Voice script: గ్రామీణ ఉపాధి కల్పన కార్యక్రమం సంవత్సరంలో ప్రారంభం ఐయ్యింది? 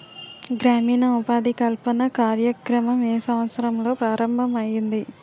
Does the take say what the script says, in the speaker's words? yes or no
no